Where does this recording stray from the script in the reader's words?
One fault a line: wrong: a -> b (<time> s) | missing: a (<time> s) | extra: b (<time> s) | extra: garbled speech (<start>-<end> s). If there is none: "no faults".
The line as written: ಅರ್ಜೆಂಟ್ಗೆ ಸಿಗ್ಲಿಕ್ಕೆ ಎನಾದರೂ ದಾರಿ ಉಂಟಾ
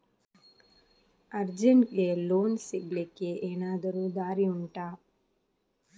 extra: ಲೋನ್ (2.2 s)